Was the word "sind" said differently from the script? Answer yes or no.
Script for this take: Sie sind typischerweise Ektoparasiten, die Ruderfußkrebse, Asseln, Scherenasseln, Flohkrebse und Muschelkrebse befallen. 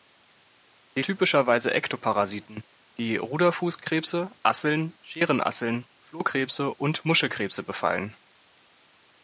yes